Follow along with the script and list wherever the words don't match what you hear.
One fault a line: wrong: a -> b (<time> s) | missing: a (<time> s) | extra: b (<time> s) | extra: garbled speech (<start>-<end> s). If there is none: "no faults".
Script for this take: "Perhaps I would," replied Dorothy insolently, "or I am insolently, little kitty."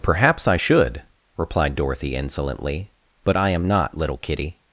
wrong: would -> should (0.5 s)
wrong: or -> but (3.2 s)
wrong: insolently -> not (3.7 s)